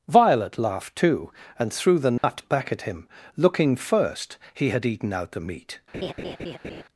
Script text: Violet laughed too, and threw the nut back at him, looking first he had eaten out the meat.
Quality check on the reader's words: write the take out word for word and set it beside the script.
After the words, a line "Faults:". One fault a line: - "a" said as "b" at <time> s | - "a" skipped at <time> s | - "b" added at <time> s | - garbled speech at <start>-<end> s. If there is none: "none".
Violet laughed too, and threw the nut back at him, looking first he had eaten out the meat.
Faults:
none